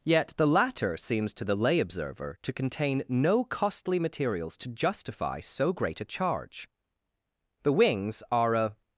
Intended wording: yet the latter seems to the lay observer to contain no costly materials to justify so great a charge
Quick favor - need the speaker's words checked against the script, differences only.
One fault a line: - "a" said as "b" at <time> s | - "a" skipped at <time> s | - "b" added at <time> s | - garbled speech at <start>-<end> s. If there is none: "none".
- "the wings are a" added at 7.6 s